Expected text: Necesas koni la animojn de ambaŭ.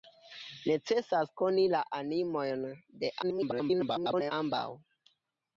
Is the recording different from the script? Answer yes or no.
yes